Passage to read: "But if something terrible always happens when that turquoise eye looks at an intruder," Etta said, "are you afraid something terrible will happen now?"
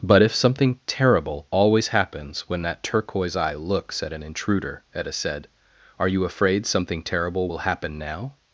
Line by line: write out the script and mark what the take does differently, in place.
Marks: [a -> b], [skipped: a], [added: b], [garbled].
"But if something terrible always happens when that turquoise eye looks at an intruder," Etta said, "are you afraid something terrible will happen now?"